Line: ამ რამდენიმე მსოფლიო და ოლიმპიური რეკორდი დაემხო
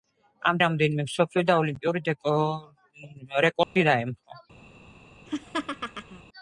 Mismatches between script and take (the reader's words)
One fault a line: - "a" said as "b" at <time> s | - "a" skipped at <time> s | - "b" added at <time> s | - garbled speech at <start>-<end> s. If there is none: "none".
none